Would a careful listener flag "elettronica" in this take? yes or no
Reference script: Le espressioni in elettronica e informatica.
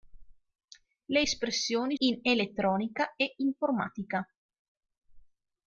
no